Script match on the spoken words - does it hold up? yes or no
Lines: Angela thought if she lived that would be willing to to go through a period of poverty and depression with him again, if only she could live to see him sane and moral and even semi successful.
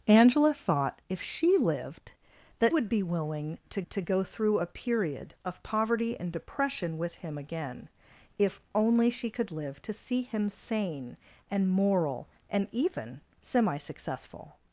yes